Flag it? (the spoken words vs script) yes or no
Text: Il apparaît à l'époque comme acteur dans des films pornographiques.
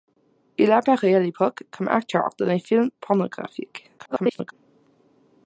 yes